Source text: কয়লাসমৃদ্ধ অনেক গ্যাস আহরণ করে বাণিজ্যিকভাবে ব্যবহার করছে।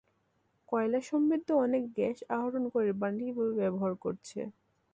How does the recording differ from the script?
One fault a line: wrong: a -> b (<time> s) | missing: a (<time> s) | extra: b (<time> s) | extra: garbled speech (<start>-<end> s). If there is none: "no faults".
no faults